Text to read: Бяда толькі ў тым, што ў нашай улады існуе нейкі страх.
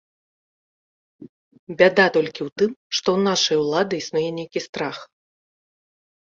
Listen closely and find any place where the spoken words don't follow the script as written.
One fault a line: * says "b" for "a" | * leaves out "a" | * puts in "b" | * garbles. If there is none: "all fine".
all fine